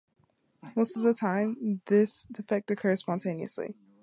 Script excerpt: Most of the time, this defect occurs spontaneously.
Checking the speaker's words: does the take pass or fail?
pass